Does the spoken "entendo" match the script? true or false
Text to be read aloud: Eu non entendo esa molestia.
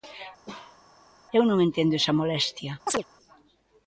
true